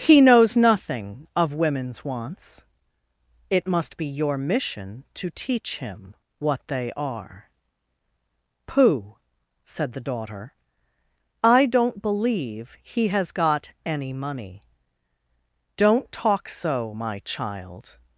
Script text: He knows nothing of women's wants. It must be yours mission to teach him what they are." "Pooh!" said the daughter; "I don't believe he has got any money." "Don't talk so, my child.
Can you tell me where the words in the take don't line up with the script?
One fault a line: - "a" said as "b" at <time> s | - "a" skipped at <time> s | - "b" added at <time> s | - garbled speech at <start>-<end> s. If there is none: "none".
- "yours" said as "your" at 4.1 s